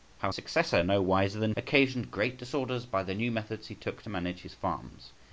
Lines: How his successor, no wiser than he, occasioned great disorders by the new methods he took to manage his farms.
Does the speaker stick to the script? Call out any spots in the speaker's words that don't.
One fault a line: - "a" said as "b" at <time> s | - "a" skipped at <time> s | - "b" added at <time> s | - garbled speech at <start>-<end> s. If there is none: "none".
- "his" skipped at 0.3 s
- "he" skipped at 1.5 s